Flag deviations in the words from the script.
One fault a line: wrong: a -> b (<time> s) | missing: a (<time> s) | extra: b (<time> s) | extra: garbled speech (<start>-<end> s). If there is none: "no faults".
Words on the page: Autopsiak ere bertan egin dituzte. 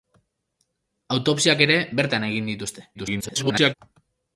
extra: garbled speech (2.9-3.7 s)